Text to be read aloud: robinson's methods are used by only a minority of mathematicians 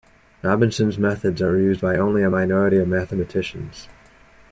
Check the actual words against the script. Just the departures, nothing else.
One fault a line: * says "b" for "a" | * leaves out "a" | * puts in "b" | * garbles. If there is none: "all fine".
all fine